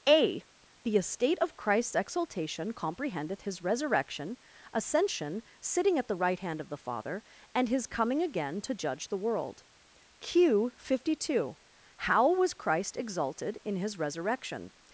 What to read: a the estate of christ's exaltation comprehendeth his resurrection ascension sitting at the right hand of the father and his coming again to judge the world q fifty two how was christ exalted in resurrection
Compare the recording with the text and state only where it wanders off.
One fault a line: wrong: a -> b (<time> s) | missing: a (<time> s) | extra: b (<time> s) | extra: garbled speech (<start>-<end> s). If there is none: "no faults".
extra: his (13.8 s)